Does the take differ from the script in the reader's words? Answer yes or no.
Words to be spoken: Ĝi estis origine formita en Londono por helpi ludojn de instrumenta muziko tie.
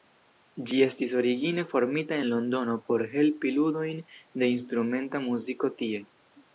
no